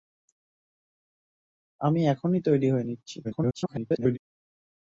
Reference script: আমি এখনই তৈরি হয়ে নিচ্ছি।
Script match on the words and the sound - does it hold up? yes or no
no